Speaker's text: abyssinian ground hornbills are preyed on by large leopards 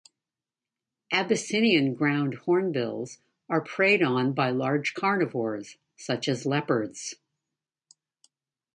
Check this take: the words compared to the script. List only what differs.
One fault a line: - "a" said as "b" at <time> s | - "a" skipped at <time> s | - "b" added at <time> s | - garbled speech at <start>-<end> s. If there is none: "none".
- "carnivores such as" added at 4.9 s